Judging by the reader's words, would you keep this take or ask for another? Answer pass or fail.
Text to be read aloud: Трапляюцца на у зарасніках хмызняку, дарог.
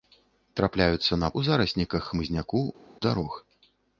pass